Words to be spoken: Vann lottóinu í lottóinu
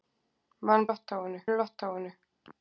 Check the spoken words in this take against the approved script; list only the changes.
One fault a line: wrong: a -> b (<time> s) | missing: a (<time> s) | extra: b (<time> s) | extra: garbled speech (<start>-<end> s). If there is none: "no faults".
no faults